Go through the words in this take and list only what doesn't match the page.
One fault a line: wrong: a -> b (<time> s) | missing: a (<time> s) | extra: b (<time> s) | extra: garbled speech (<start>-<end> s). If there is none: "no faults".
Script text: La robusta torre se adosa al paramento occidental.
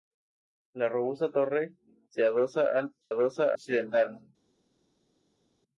wrong: paramento -> adosa (3.1 s)